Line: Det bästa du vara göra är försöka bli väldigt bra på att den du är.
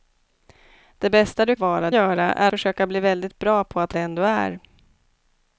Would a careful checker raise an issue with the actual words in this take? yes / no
no